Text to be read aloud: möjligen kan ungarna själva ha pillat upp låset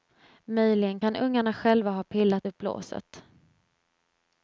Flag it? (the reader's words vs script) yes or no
no